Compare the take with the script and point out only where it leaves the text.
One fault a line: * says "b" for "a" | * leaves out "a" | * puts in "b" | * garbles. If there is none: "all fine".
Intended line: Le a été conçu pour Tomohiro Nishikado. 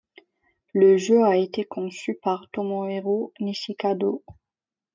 * puts in "jeu"
* says "par" for "pour"